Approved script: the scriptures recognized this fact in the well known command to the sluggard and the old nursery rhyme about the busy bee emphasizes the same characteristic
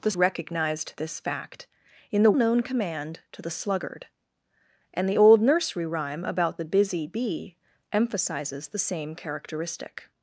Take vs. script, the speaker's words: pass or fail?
fail